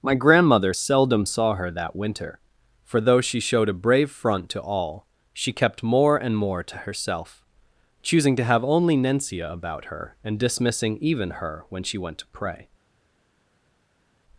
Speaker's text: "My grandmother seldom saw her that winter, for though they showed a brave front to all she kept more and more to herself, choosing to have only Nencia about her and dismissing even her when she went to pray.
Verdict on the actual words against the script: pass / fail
fail